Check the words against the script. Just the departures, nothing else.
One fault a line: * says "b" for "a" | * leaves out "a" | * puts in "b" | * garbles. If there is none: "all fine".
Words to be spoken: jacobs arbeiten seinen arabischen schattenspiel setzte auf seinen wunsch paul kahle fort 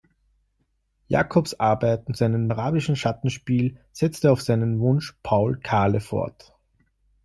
all fine